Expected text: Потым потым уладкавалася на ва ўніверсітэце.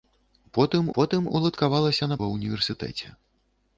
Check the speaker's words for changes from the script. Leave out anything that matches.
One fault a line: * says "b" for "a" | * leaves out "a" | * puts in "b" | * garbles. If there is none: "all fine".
all fine